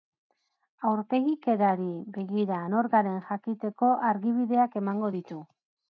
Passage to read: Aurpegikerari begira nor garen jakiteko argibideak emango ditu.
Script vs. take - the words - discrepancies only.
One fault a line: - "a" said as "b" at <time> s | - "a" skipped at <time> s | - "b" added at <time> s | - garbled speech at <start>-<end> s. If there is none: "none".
none